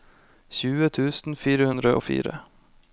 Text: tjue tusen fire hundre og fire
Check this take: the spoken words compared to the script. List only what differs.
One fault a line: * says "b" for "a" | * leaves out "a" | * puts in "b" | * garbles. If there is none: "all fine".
all fine